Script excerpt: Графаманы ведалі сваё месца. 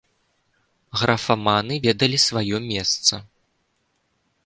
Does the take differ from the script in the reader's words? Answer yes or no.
no